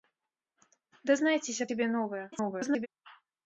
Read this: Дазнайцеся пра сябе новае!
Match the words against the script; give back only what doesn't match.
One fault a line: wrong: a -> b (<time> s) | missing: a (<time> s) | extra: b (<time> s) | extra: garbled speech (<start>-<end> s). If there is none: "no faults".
missing: пра (1.7 s)
extra: garbled speech (2.3-2.9 s)